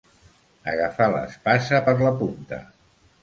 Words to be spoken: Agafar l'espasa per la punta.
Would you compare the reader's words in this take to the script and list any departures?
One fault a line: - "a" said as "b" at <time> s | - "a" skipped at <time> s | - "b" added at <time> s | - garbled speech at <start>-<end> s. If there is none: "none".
none